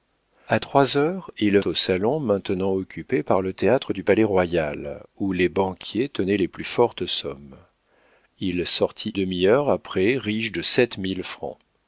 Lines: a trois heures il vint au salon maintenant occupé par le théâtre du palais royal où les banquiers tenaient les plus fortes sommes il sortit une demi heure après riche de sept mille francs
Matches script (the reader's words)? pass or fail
fail